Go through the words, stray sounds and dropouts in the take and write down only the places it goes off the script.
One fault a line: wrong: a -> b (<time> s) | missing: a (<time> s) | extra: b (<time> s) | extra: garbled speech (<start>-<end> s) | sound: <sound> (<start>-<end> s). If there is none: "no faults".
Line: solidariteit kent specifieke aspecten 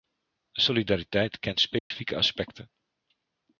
sound: dropout (1.8-1.9 s)